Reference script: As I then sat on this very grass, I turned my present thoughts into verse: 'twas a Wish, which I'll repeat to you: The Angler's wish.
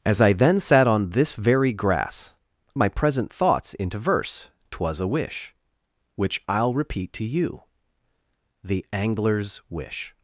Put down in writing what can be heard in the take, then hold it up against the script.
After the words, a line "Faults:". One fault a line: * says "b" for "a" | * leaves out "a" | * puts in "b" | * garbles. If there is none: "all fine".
As I then sat on this very grass, my present thoughts into verse: 'twas a Wish, which I'll repeat to you: The Angler's wish.
Faults:
* leaves out "I turned"